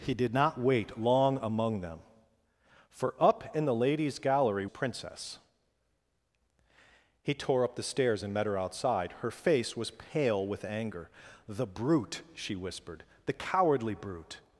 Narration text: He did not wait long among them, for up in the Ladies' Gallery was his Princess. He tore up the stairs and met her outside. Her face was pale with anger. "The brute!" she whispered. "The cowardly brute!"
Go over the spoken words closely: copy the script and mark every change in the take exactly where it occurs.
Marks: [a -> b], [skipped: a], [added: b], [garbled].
He did not wait long among them, for up in the Ladies' Gallery [skipped: was his] Princess. He tore up the stairs and met her outside. Her face was pale with anger. "The brute!" she whispered. "The cowardly brute!"